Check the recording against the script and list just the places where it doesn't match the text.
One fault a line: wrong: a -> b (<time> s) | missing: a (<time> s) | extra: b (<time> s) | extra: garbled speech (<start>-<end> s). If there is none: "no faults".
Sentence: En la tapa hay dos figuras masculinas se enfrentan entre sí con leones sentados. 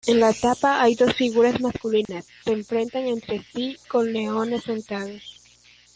no faults